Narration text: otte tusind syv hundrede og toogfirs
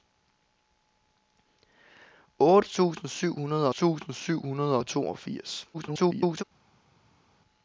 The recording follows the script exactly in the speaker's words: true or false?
false